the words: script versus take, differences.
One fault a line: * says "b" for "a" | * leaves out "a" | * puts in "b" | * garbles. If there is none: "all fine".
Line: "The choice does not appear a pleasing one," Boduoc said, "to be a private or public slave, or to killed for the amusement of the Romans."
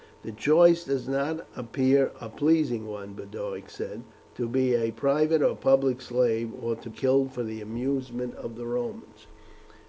all fine